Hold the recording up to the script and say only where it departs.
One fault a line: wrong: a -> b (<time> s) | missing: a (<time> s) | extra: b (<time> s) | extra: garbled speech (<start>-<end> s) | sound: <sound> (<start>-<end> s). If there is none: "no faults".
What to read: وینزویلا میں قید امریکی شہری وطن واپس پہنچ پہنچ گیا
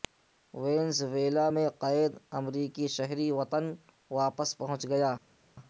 missing: پہنچ (4.8 s)